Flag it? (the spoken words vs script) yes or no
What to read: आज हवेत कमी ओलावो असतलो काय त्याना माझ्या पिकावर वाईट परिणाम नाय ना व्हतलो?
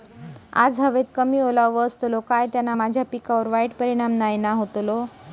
no